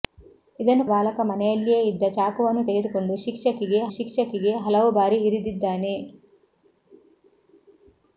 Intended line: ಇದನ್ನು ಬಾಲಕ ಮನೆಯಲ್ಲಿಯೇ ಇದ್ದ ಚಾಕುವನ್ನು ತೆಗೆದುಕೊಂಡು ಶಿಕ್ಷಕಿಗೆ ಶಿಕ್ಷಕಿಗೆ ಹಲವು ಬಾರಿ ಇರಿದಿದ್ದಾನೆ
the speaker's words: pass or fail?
pass